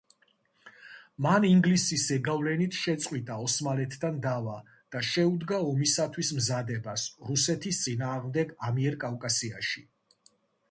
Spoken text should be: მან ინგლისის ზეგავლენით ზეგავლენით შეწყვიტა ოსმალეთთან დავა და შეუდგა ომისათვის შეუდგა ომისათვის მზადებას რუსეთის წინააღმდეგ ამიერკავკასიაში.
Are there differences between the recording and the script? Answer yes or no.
yes